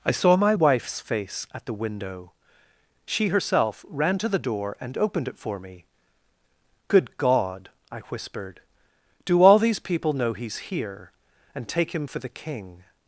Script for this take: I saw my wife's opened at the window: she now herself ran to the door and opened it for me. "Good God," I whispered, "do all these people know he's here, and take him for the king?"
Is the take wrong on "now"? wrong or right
wrong